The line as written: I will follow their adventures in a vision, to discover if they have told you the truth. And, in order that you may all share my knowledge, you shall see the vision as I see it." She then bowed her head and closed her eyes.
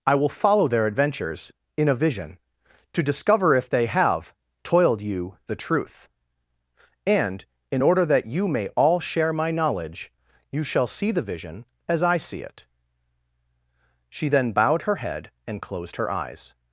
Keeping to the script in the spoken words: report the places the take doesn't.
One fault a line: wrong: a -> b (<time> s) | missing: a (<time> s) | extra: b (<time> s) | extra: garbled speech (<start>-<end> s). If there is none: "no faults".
wrong: told -> toiled (4.6 s)